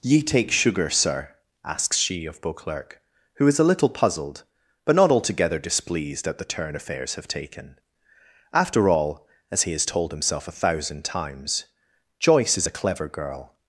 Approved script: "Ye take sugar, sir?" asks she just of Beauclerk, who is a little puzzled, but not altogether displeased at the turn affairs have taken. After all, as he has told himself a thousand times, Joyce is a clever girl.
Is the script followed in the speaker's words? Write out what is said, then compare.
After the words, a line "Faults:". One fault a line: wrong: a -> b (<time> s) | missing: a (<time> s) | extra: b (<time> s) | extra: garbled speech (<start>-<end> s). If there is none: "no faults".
"Ye take sugar, sir?" asks she of Beauclerk, who is a little puzzled, but not altogether displeased at the turn affairs have taken. After all, as he has told himself a thousand times, Joyce is a clever girl.
Faults:
missing: just (2.2 s)